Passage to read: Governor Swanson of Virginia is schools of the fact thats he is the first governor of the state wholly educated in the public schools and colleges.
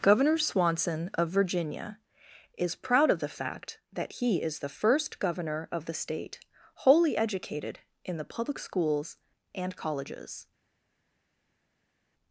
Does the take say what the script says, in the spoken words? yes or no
no